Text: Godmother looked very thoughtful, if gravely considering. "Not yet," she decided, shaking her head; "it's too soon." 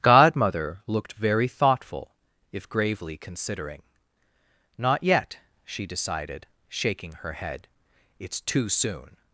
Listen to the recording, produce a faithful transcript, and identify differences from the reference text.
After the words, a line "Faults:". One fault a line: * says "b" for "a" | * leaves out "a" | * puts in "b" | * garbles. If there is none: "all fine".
Godmother looked very thoughtful, if gravely considering. "Not yet," she decided, shaking her head; "it's too soon."
Faults:
all fine